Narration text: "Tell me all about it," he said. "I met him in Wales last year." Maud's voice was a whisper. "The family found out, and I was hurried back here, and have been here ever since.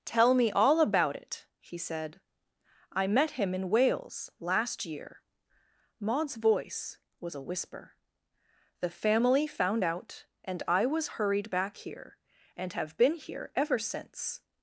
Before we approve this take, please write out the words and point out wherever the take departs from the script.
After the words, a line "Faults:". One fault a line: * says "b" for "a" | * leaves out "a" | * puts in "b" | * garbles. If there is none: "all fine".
"Tell me all about it," he said. "I met him in Wales last year." Maud's voice was a whisper. "The family found out, and I was hurried back here, and have been here ever since.
Faults:
all fine